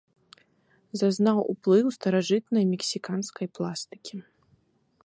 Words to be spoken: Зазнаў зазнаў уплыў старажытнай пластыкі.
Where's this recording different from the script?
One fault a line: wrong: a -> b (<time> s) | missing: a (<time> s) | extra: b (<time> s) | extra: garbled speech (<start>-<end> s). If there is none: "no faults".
missing: зазнаў (1.4 s)
extra: мексіканскай (2.7 s)